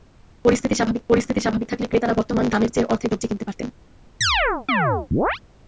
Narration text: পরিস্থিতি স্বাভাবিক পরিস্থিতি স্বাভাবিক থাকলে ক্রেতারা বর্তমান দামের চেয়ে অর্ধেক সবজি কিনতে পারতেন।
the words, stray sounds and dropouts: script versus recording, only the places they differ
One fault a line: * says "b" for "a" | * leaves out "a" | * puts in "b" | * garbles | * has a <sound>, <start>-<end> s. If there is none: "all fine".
* has a chirp, 4.2-5.4 s